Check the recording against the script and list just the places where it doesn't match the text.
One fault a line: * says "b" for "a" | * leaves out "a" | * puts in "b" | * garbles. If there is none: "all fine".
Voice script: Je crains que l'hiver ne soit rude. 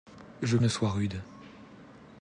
* leaves out "crains que l'hiver"